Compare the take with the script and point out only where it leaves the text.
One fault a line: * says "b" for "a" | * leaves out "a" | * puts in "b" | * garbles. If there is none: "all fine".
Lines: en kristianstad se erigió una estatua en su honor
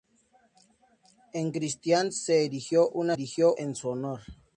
* says "erigió" for "estatua"